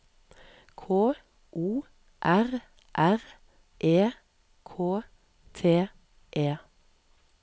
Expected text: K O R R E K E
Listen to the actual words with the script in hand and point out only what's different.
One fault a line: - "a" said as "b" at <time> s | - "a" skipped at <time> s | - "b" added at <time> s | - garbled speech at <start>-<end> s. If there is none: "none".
- "T" added at 5.5 s